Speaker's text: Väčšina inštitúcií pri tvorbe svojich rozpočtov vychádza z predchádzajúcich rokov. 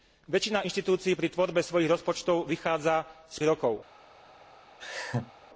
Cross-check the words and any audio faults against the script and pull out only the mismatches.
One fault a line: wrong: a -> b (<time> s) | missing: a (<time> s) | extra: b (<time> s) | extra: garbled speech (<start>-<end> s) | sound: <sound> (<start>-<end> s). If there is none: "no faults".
missing: predchádzajúcich (3.4 s)
sound: laugh (4.8-5.3 s)